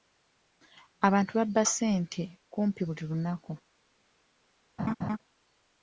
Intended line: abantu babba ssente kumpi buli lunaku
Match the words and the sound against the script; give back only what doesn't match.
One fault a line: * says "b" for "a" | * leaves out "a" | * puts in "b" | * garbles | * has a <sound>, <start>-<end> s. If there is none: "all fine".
* has a laugh, 4.8-5.2 s